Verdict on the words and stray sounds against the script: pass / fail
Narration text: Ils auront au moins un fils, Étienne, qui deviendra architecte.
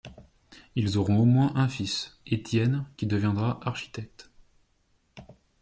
pass